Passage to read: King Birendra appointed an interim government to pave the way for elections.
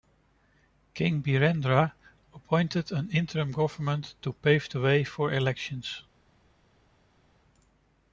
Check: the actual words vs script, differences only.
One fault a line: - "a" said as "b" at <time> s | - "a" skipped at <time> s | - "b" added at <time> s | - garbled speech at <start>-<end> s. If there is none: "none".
none